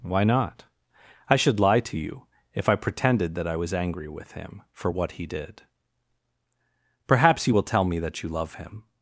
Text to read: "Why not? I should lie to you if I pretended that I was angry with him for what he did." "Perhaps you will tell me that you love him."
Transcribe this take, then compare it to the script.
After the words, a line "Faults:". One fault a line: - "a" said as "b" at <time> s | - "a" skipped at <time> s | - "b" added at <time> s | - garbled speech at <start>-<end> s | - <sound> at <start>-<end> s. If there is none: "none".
"Why not? I should lie to you if I pretended that I was angry with him for what he did." "Perhaps you will tell me that you love him."
Faults:
none